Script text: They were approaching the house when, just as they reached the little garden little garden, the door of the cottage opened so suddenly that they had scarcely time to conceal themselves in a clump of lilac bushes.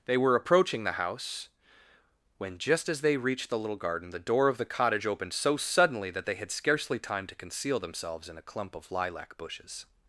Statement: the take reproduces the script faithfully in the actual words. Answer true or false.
false